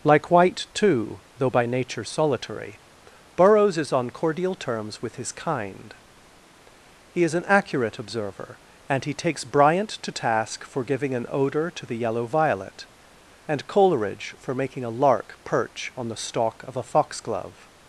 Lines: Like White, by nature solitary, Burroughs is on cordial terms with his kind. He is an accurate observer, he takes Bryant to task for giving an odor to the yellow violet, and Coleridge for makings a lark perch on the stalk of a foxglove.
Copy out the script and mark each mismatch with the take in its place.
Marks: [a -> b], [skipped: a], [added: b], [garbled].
Like White, [added: too though] by nature solitary, Burroughs is on cordial terms with his kind. He is an accurate observer, [added: and] he takes Bryant to task for giving an odor to the yellow violet, and Coleridge for [makings -> making] a lark perch on the stalk of a foxglove.